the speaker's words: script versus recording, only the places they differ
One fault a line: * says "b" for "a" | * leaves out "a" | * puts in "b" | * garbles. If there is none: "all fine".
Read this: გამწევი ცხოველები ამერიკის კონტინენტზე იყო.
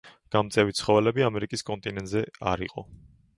* puts in "არ"